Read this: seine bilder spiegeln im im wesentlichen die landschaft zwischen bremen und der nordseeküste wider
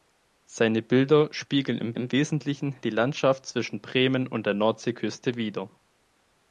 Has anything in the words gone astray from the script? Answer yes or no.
no